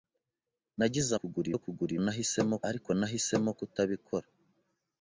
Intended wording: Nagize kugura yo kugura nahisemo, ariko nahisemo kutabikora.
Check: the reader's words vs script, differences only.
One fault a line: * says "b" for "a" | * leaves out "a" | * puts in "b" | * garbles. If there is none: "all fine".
all fine